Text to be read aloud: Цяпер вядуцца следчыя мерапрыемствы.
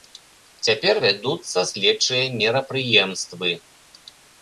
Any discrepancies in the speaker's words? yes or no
no